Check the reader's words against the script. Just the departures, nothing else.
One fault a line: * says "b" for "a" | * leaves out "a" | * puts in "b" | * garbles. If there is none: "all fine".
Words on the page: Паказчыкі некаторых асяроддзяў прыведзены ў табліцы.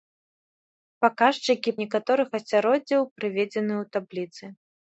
all fine